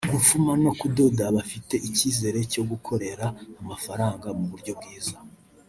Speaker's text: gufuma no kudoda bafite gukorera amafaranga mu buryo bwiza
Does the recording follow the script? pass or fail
fail